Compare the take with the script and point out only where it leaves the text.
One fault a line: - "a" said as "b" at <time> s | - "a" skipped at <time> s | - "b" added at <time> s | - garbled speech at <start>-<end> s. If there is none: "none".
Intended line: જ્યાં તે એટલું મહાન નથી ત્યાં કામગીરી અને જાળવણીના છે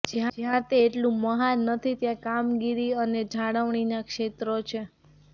- "ક્ષેત્રો" added at 4.0 s